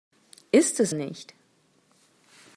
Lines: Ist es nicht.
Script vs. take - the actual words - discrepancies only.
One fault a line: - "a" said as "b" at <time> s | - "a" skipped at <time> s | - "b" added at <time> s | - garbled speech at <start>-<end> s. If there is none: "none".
none